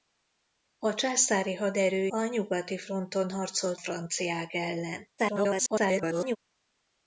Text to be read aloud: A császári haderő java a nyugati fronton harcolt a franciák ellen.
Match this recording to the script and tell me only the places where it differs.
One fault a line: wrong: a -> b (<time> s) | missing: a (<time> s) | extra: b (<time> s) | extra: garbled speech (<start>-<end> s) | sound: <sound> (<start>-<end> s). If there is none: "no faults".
missing: java (2.1 s)
missing: a (3.8 s)
extra: garbled speech (5.2-6.4 s)